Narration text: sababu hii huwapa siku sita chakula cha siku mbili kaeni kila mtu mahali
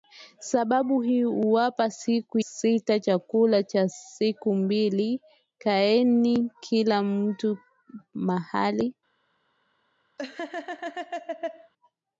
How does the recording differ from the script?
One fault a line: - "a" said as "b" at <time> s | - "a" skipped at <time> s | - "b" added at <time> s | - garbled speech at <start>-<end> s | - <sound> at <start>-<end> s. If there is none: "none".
- laugh at 10.2-11.7 s